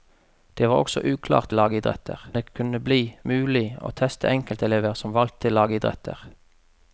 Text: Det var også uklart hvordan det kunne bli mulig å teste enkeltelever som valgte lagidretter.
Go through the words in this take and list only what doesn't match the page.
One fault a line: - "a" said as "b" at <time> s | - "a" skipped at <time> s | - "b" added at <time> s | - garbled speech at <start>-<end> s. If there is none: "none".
- "hvordan" said as "lagidretter" at 1.5 s